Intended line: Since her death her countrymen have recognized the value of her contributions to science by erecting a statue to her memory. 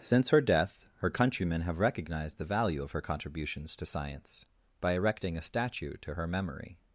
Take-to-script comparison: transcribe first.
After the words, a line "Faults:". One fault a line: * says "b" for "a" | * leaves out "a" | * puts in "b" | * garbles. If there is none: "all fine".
Since her death her countrymen have recognized the value of her contributions to science by erecting a statue to her memory.
Faults:
all fine